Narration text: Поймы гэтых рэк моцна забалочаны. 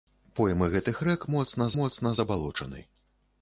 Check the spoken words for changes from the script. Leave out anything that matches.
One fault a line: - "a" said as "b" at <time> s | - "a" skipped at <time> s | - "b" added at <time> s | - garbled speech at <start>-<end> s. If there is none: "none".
- "моцна" added at 1.8 s